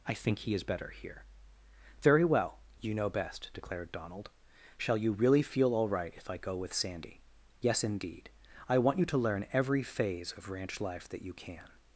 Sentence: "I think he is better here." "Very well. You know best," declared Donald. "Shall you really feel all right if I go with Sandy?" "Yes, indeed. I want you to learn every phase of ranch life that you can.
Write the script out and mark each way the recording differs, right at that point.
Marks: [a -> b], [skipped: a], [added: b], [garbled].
"I think he is better here." "Very well. You know best," declared Donald. "Shall you really feel all right if I go with Sandy?" "Yes, indeed. I want you to learn every phase of ranch life that you can.